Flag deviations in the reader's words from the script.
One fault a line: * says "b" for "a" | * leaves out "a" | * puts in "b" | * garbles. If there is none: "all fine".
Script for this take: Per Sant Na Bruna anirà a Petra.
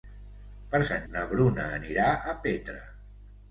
all fine